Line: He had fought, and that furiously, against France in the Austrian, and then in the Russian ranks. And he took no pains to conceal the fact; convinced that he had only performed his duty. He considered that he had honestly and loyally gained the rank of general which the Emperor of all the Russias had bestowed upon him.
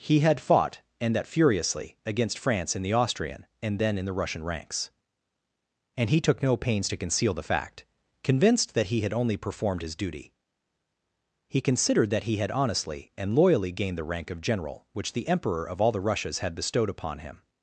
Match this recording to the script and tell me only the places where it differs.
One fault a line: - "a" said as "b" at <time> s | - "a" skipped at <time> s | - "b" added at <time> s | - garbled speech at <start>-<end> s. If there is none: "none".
none